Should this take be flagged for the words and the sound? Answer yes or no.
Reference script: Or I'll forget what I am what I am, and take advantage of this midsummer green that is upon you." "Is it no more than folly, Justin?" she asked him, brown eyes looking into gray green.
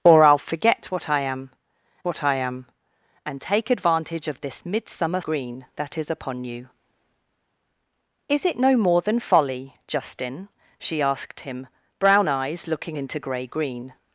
no